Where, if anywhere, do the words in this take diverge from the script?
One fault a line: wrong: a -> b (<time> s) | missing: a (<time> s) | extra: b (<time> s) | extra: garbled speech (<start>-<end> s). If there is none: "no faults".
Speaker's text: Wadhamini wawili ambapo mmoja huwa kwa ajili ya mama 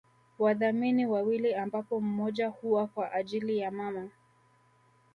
no faults